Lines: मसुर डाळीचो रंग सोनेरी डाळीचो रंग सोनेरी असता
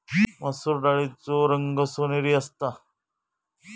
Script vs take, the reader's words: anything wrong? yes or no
yes